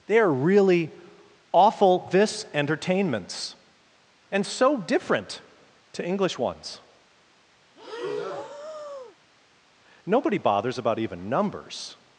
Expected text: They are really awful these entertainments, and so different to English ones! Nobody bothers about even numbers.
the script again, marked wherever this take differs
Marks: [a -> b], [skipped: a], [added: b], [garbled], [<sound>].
They are really awful [these -> this] entertainments, and so different to English ones! [breath] Nobody bothers about even numbers.